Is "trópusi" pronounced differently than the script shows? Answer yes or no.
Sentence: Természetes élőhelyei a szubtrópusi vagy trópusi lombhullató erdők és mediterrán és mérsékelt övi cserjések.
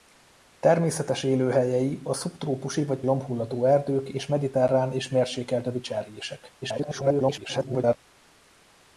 yes